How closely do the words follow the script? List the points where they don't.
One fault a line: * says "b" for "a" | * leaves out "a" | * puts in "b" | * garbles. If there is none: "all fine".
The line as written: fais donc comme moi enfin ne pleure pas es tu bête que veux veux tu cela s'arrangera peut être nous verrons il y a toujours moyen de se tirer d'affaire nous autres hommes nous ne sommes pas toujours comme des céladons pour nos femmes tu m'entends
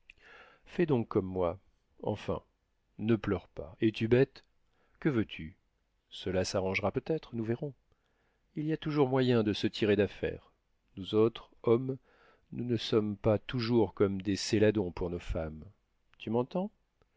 * leaves out "veux"